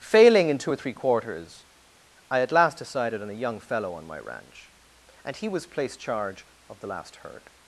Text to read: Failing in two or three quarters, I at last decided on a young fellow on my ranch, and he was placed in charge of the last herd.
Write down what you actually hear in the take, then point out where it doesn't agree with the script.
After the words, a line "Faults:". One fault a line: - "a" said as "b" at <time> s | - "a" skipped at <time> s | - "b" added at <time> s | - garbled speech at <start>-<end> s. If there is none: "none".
Failing in two or three quarters, I at last decided on a young fellow on my ranch, and he was placed charge of the last herd.
Faults:
- "in" skipped at 6.0 s